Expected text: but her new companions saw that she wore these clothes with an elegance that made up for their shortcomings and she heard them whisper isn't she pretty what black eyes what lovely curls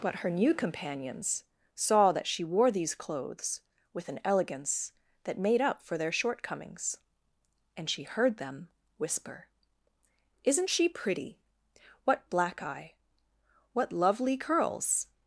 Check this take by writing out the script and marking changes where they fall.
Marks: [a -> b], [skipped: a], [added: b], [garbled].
but her new companions saw that she wore these clothes with an elegance that made up for their shortcomings and she heard them whisper isn't she pretty what black [eyes -> eye] what lovely curls